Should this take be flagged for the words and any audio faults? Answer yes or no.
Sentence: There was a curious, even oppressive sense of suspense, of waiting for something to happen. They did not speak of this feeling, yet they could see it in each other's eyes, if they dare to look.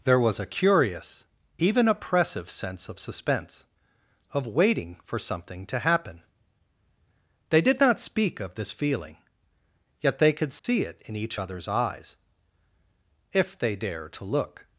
yes